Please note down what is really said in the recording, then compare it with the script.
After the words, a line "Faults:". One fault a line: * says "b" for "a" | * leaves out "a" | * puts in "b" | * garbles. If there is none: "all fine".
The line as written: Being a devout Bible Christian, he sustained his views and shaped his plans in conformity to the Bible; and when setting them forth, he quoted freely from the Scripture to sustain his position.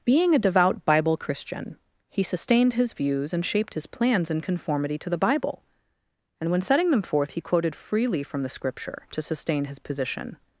Being a devout Bible Christian, he sustained his views and shaped his plans in conformity to the Bible; and when setting them forth, he quoted freely from the Scripture to sustain his position.
Faults:
all fine